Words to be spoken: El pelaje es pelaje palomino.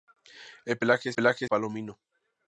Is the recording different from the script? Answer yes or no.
no